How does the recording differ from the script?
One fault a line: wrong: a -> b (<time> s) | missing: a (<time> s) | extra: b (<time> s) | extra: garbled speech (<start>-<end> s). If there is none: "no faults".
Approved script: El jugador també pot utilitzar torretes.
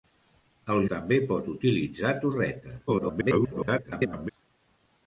missing: jugador (0.8 s)
extra: garbled speech (2.9-4.3 s)